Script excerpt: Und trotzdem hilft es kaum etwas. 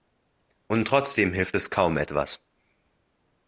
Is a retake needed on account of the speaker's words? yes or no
no